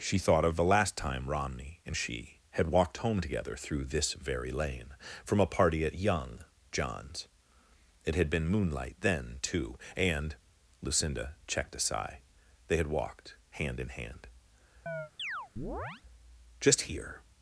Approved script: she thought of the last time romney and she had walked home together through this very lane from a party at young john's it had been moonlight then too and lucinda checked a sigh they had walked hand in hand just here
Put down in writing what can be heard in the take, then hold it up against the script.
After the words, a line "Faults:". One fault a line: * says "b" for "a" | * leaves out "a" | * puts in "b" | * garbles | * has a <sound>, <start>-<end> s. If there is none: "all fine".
she thought of the last time romney and she had walked home together through this very lane from a party at young john's it had been moonlight then too and lucinda checked a sigh they had walked hand in hand just here
Faults:
* has a chirp, 14.9-16.0 s